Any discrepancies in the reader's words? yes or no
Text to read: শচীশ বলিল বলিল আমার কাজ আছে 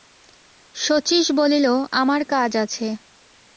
yes